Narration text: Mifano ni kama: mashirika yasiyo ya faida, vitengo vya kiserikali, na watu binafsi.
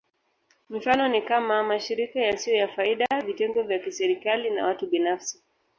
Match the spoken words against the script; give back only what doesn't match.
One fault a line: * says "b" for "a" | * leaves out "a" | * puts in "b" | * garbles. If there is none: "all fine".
all fine